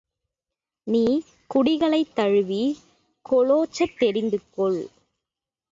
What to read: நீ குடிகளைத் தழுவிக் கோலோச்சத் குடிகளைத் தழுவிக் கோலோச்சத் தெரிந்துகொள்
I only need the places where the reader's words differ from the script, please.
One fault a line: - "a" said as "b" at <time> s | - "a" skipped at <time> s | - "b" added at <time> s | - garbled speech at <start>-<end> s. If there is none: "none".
- "குடிகளைத் தழுவிக் கோலோச்சத்" skipped at 4.0 s